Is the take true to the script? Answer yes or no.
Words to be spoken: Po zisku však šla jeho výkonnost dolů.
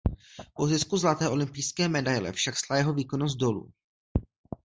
no